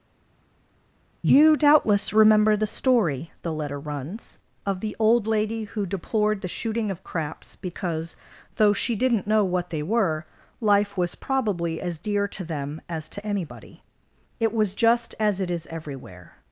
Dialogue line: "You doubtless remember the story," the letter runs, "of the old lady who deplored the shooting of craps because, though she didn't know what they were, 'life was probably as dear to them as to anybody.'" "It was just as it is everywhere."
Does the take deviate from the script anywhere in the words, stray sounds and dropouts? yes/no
no